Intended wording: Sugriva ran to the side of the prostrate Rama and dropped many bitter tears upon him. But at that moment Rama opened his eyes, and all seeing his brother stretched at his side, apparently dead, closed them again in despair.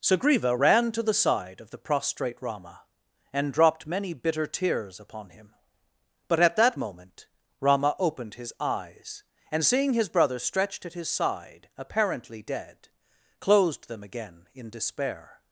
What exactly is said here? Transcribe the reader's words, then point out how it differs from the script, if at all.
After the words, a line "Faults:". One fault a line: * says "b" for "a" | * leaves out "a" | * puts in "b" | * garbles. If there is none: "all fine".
Sugriva ran to the side of the prostrate Rama and dropped many bitter tears upon him. But at that moment Rama opened his eyes, and seeing his brother stretched at his side, apparently dead, closed them again in despair.
Faults:
* leaves out "all"